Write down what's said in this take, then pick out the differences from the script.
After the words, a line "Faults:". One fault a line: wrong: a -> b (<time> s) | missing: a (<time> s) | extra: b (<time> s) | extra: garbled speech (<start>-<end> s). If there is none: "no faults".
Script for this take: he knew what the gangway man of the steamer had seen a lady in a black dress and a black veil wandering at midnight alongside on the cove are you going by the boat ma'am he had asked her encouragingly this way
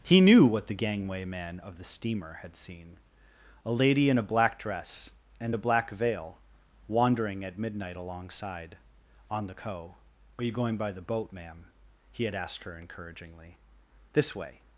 he knew what the gangway man of the steamer had seen a lady in a black dress and a black veil wandering at midnight alongside on the cove are you going by the boat ma'am he had asked her encouragingly this way
Faults:
no faults